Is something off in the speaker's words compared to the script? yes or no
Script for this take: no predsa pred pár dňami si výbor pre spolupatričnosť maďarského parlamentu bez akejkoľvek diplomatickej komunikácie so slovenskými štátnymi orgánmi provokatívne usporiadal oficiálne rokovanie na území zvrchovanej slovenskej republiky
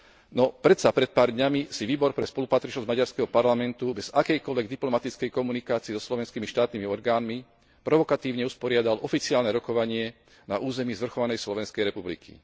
no